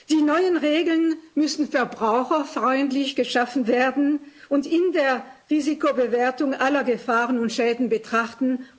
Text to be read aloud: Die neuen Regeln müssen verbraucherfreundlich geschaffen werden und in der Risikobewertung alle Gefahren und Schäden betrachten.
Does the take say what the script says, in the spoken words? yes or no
yes